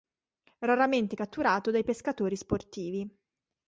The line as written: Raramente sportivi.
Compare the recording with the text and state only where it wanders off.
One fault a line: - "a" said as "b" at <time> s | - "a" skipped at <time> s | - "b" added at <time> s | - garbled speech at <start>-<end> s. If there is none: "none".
- "catturato dai pescatori" added at 1.1 s